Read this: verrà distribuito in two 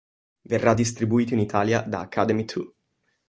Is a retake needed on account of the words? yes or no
yes